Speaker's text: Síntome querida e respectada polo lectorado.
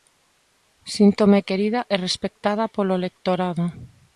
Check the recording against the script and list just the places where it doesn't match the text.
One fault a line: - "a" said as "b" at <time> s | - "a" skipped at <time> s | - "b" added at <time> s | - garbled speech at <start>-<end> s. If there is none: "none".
none